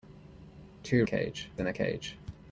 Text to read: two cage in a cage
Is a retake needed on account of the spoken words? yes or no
no